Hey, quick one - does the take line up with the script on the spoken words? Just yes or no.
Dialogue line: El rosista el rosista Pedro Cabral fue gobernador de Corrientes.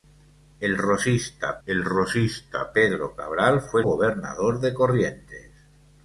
yes